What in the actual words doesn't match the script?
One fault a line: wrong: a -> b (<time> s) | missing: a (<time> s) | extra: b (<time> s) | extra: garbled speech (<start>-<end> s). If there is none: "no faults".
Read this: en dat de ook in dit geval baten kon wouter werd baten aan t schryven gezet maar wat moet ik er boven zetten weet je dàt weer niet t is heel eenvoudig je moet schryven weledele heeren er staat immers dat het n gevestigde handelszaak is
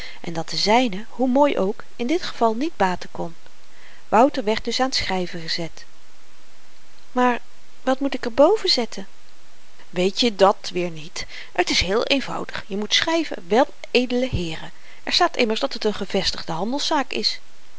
extra: zyne hoe mooi (0.6 s)
extra: niet (2.5 s)
wrong: baten -> dus (4.6 s)